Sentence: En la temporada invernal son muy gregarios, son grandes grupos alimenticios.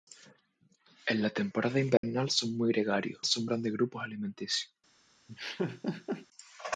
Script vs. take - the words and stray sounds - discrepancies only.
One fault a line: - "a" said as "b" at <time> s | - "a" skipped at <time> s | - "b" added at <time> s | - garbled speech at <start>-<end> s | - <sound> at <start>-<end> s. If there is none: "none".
- dropout at 2.0-2.0 s
- laugh at 5.3-6.3 s